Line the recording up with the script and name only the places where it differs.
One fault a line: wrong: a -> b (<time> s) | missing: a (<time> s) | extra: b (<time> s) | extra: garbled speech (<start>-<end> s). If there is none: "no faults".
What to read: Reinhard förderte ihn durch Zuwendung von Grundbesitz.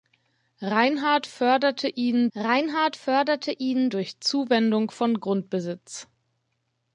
extra: reinhard förderte ihn (2.3 s)